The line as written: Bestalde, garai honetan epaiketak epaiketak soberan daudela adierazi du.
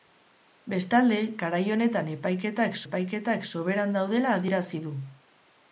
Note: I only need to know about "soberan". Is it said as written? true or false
true